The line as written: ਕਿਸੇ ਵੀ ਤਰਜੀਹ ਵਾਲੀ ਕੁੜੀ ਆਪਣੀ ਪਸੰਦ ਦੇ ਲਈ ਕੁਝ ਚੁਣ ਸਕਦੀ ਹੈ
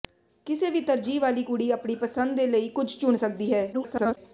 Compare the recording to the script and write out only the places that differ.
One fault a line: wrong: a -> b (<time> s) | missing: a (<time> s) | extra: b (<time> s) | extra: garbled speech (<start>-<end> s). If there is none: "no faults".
extra: garbled speech (3.7-4.2 s)